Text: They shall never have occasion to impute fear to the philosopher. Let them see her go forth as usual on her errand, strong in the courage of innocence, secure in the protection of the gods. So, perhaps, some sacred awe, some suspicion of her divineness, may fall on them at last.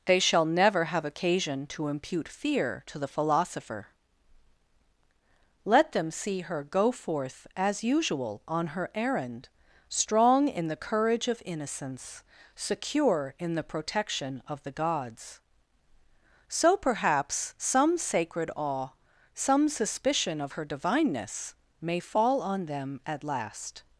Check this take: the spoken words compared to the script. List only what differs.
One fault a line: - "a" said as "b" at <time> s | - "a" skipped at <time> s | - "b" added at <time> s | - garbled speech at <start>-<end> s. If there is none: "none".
none